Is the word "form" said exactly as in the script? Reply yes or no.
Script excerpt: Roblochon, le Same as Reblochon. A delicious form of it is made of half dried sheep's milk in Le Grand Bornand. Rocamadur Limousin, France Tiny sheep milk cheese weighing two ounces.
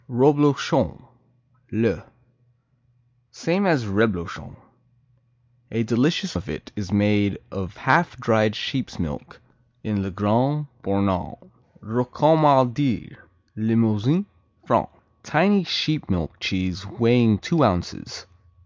no